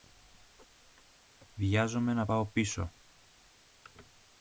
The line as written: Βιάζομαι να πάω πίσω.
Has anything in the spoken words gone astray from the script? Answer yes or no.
no